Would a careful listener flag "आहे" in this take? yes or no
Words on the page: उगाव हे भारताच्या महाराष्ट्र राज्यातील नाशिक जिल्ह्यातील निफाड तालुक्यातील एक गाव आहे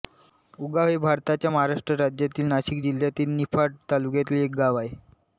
no